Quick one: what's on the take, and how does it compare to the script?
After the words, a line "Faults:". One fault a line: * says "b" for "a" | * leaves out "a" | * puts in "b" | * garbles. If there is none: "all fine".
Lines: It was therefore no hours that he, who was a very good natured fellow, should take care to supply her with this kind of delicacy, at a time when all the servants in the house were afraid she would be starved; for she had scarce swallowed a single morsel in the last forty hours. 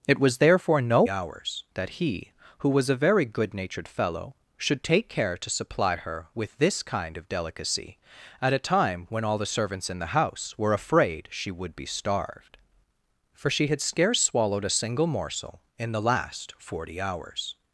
It was therefore no hours that he, who was a very good natured fellow, should take care to supply her with this kind of delicacy, at a time when all the servants in the house were afraid she would be starved; for she had scarce swallowed a single morsel in the last forty hours.
Faults:
all fine